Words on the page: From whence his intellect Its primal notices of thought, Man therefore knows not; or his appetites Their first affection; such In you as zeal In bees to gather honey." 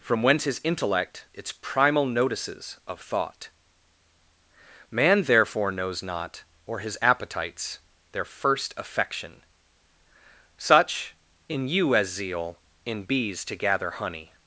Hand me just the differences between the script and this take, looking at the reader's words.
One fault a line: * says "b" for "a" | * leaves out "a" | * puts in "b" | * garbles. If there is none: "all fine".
all fine